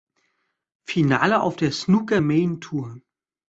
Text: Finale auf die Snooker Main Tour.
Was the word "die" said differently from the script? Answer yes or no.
yes